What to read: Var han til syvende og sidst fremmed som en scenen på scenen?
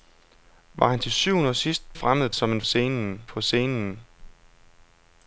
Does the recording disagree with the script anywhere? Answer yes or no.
no